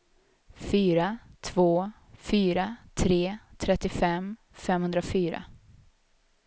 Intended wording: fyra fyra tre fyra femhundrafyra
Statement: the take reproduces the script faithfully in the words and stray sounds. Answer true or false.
false